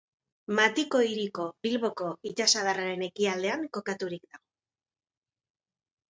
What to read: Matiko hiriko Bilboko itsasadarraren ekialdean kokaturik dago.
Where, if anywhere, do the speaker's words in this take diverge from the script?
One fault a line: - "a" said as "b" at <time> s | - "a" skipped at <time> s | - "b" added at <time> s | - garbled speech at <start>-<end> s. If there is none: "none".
none